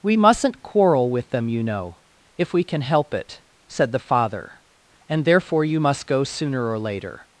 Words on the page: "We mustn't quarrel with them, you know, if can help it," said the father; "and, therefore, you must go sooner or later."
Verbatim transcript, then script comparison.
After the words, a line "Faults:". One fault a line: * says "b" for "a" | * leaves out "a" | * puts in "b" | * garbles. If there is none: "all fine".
"We mustn't quarrel with them, you know, if we can help it," said the father; "and, therefore, you must go sooner or later."
Faults:
* puts in "we"